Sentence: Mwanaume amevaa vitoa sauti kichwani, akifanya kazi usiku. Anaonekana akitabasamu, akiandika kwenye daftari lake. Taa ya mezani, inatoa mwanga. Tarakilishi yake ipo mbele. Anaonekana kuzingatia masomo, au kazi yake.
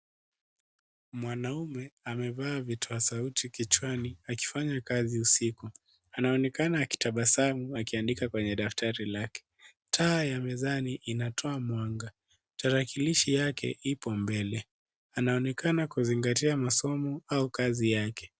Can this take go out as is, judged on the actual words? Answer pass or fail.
pass